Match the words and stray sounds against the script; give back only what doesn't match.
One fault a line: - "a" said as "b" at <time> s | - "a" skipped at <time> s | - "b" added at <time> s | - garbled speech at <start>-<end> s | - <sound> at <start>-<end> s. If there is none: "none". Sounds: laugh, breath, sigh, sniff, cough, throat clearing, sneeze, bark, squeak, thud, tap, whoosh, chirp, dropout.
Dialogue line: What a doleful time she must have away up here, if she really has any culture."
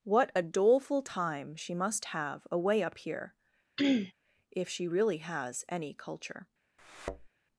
- throat clearing at 3.8-4.1 s
- thud at 6.8-7.3 s